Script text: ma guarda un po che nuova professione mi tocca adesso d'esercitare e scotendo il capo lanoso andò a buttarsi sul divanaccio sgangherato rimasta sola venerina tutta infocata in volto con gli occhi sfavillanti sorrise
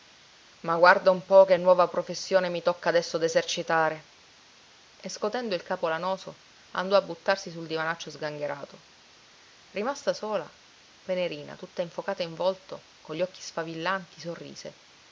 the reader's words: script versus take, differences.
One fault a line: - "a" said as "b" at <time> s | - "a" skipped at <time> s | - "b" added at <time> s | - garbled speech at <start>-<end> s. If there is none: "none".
none